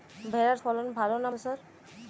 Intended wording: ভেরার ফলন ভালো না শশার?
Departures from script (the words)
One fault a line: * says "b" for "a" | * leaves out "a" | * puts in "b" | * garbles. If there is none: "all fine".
all fine